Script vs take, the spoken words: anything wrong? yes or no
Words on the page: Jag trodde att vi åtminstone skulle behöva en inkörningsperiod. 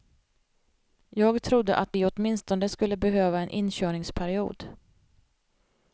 no